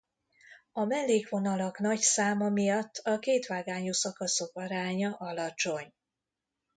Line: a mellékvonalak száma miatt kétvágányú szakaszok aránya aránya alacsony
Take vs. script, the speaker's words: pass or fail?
fail